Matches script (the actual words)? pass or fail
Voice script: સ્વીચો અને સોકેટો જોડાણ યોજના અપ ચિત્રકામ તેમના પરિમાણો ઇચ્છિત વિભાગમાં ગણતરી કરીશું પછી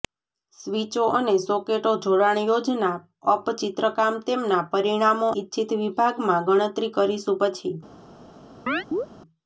pass